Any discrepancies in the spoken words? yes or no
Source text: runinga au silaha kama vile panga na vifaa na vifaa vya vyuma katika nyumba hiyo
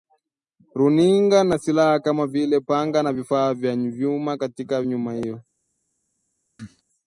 yes